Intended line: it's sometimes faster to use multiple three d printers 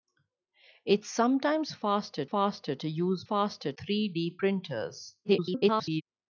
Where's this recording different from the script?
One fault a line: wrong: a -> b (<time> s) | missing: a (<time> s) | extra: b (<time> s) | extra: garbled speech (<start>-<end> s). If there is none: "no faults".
extra: faster (2.2 s)
wrong: multiple -> faster (3.2 s)
extra: garbled speech (5.2-6.0 s)